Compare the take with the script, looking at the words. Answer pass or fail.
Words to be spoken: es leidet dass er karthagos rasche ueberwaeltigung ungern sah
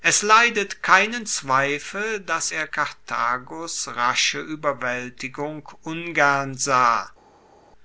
fail